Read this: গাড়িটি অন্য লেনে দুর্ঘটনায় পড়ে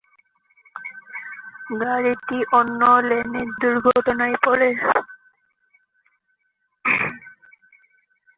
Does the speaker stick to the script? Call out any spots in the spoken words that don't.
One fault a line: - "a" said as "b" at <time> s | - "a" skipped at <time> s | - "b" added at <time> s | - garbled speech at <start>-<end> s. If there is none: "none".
none